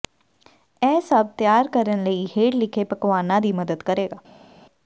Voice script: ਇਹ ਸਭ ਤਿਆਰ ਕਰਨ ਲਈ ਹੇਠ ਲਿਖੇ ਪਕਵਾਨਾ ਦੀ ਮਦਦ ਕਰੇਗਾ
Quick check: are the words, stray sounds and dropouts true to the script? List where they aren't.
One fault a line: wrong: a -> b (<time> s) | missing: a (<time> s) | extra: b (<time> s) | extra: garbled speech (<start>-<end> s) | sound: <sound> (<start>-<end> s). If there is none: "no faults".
no faults